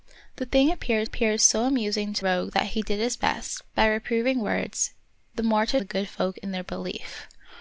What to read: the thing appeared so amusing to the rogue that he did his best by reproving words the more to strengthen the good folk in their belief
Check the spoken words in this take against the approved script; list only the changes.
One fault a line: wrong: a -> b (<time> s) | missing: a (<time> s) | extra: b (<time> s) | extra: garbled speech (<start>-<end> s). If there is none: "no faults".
extra: appeared (1.0 s)
missing: the (2.2 s)
missing: strengthen (5.8 s)